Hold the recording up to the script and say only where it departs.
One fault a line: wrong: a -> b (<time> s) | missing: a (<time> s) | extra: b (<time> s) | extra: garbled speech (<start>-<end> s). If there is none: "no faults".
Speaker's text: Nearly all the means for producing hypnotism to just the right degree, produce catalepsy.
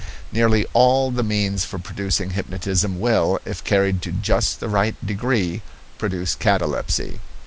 extra: will if carried (3.0 s)